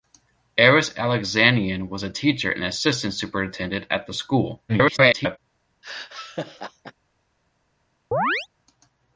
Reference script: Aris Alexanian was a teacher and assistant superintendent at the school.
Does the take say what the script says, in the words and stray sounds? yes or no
no